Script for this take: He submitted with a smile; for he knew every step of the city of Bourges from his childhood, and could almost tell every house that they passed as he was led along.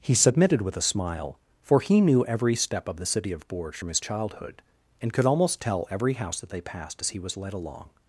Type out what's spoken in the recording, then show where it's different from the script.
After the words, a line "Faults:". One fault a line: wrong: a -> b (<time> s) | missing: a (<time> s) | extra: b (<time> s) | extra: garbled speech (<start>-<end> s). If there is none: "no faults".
He submitted with a smile; for he knew every step of the city of Bourges from his childhood, and could almost tell every house that they passed as he was led along.
Faults:
no faults